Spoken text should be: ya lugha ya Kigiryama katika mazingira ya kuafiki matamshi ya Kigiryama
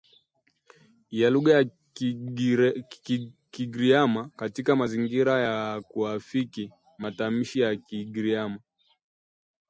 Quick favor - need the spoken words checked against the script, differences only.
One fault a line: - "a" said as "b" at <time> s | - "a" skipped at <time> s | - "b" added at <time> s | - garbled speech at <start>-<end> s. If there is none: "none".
none